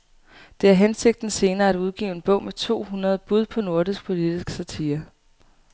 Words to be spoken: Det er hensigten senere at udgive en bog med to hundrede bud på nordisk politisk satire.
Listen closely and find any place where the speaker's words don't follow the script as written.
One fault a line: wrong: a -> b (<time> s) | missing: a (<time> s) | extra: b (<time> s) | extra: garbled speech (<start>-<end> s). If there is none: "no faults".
no faults